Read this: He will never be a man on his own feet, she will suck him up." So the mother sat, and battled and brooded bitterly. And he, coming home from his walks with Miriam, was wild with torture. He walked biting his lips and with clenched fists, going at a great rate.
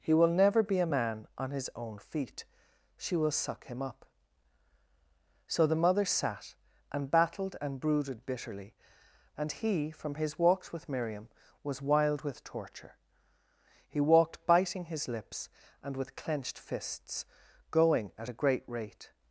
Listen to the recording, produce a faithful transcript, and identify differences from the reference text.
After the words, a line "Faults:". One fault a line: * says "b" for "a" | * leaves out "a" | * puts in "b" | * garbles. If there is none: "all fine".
He will never be a man on his own feet, she will suck him up." So the mother sat, and battled and brooded bitterly. And he, from his walks with Miriam, was wild with torture. He walked biting his lips and with clenched fists, going at a great rate.
Faults:
* leaves out "coming home"